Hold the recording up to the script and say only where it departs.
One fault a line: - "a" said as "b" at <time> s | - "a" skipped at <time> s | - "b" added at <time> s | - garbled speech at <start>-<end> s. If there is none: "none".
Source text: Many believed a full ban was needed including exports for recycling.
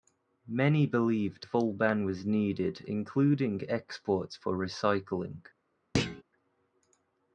- "a" skipped at 1.4 s